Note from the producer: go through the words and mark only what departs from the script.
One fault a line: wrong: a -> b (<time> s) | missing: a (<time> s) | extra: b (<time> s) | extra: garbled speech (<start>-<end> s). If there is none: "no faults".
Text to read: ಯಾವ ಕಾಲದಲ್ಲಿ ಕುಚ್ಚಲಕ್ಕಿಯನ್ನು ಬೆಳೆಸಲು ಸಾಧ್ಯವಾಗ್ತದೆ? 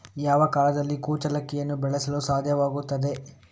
no faults